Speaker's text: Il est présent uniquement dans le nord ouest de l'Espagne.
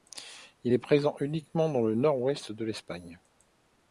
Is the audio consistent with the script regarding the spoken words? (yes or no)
yes